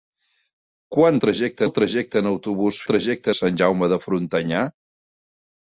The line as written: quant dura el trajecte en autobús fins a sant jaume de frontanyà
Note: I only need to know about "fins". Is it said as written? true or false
false